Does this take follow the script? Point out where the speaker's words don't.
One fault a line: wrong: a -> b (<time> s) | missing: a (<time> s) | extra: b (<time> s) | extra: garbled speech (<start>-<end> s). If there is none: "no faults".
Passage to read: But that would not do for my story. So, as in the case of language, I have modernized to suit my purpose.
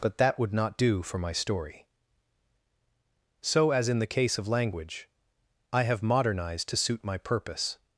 no faults